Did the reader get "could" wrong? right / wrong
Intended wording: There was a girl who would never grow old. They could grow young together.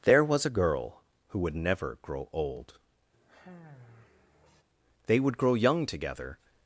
wrong